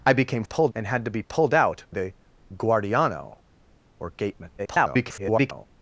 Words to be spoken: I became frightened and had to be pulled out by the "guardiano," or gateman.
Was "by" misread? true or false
true